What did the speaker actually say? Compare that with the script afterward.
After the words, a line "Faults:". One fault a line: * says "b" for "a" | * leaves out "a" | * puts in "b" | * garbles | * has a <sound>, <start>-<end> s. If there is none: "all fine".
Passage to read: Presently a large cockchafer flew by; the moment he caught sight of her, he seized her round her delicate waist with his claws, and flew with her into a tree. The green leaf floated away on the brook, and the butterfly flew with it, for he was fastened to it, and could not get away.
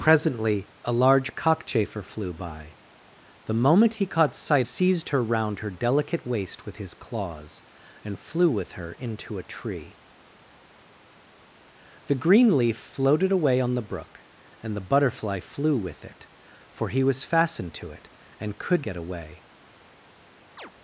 Presently a large cockchafer flew by; the moment he caught sight seized her round her delicate waist with his claws, and flew with her into a tree. The green leaf floated away on the brook, and the butterfly flew with it, for he was fastened to it, and could get away.
Faults:
* leaves out "of her he"
* leaves out "not"
* has a chirp, 20.6-20.7 s